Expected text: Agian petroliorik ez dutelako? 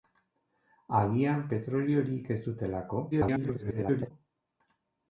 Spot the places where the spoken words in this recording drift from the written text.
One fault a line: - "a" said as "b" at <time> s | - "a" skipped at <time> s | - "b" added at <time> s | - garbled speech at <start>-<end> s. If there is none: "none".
- garbled speech at 3.1-4.1 s